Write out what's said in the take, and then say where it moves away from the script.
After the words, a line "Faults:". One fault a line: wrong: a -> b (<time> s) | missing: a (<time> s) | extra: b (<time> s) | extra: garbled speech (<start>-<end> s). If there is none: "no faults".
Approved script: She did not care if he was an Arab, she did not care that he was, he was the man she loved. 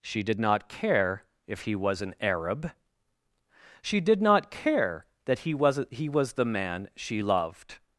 She did not care if he was an Arab, she did not care that he was, he was the man she loved.
Faults:
no faults